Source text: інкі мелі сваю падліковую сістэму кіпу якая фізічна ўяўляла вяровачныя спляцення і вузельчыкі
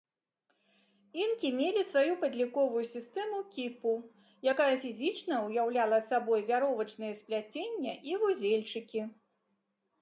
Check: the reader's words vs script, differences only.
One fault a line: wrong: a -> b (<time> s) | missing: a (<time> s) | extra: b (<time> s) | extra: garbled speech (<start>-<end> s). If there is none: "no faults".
extra: сабой (6.1 s)